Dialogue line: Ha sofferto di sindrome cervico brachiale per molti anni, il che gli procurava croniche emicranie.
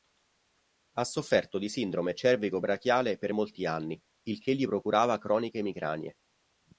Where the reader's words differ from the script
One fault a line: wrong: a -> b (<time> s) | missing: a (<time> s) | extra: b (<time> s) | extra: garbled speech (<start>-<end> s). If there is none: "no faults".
no faults